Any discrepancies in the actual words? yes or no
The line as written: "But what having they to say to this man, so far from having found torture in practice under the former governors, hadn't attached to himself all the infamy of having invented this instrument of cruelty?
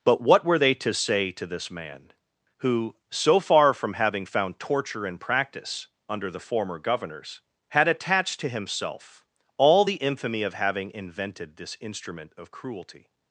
yes